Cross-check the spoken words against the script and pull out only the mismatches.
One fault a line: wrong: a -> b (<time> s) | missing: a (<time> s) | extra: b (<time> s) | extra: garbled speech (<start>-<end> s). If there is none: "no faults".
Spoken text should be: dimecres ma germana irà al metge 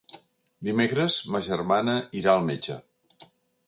no faults